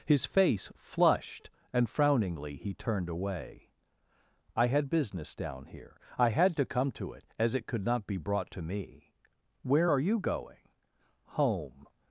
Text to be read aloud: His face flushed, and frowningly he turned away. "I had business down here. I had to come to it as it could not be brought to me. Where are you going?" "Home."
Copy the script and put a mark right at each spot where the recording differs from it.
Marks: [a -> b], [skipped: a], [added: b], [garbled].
His face flushed, and frowningly he turned away. "I had business down here. I had to come to it as it could not be brought to me. Where are you going?" "Home."